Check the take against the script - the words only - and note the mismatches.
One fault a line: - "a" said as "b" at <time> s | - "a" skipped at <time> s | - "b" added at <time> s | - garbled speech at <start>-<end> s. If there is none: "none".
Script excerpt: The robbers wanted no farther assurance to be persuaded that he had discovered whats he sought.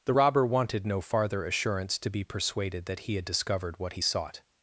- "robbers" said as "robber" at 0.1 s
- "whats" said as "what" at 3.8 s